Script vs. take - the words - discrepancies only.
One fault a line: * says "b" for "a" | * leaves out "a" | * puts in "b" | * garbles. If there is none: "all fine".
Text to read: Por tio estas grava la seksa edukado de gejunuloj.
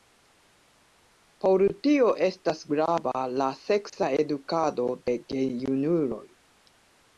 all fine